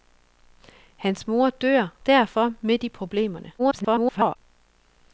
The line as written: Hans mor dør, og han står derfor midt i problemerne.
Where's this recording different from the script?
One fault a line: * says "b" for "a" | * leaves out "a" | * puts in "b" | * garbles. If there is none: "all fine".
* leaves out "og han står"
* garbles